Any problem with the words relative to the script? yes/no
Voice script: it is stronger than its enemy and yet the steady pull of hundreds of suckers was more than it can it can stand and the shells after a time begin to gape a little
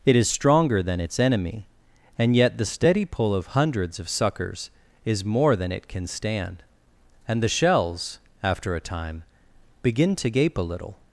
yes